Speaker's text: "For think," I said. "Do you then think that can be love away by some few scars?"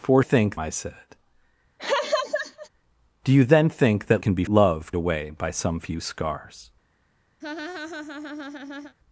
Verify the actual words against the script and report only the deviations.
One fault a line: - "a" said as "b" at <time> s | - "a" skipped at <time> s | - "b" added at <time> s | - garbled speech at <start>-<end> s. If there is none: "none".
none